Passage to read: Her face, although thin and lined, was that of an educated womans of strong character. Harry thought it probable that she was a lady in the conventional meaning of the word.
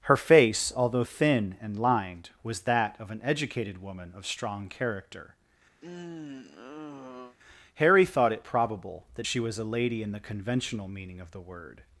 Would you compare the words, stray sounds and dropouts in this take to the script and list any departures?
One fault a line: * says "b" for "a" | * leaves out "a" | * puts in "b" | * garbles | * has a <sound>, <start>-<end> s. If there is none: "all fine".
* says "woman" for "womans"
* has a sigh, 5.8-7.4 s